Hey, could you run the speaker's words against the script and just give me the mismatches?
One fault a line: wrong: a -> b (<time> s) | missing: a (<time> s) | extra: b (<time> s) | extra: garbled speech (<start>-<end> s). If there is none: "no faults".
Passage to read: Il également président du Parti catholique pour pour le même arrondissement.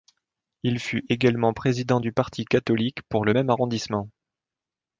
extra: fut (0.8 s)
missing: pour (3.3 s)